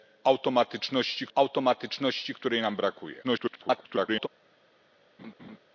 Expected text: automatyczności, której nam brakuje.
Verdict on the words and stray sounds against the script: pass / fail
fail